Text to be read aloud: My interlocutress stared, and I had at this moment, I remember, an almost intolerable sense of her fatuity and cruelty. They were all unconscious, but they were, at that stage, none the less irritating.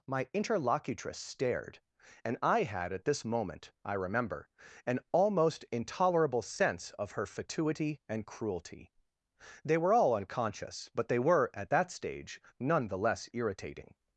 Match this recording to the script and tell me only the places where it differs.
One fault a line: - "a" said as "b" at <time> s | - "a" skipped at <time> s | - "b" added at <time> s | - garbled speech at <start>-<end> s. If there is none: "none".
none